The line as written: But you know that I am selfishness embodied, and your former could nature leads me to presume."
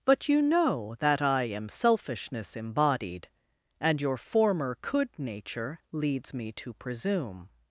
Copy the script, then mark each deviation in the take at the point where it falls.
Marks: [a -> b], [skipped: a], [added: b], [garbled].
But you know that I am selfishness embodied, and your former could nature leads me to presume."